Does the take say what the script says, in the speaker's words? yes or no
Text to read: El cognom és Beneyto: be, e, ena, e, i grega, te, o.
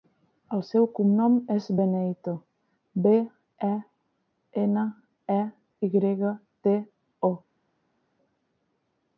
no